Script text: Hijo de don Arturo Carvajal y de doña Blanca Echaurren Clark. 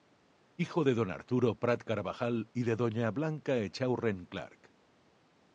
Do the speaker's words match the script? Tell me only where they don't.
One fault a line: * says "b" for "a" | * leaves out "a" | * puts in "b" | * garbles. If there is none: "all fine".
* puts in "Prat"